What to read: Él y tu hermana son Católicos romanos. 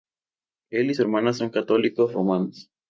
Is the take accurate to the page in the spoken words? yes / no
no